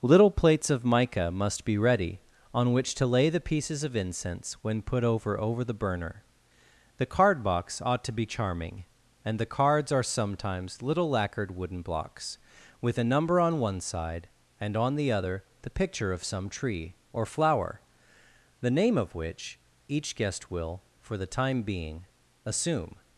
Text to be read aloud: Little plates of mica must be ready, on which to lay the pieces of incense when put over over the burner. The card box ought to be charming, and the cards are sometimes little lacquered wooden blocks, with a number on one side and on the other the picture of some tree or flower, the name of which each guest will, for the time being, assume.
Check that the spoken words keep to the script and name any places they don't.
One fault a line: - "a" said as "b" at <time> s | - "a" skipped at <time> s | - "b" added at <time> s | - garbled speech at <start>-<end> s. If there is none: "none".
none